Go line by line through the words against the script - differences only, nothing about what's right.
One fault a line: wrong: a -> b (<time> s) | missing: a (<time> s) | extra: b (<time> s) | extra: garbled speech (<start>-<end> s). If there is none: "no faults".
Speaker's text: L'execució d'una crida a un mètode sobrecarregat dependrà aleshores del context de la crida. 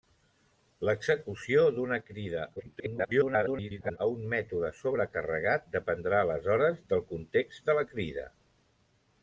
extra: garbled speech (2.6-4.0 s)